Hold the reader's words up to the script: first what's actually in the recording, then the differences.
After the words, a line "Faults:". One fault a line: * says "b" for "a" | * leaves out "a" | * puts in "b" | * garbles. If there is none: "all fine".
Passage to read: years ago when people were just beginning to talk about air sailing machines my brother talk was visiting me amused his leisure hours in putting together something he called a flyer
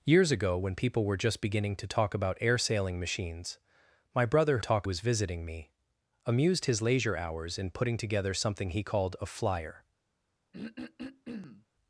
years ago when people were just beginning to talk about air sailing machines my brother talk was visiting me amused his leisure hours in putting together something he called a flyer
Faults:
all fine